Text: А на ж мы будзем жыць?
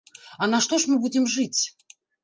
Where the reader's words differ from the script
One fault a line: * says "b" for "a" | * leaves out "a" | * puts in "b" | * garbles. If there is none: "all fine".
* puts in "што"